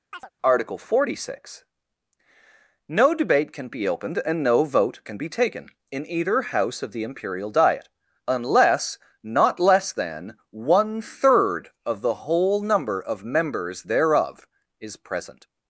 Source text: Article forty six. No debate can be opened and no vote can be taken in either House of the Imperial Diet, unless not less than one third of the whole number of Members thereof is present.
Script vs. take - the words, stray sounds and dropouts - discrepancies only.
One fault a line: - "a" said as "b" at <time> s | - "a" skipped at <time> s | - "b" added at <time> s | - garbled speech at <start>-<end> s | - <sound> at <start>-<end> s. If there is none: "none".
- chirp at 0.1-0.3 s